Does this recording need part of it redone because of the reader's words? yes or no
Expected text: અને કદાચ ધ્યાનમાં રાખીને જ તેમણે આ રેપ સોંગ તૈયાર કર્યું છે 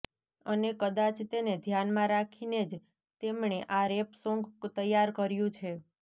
yes